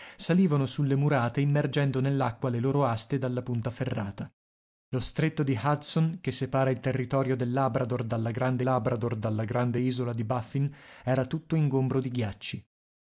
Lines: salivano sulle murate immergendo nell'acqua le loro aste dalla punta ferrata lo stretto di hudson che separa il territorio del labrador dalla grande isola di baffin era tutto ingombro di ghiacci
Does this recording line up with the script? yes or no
no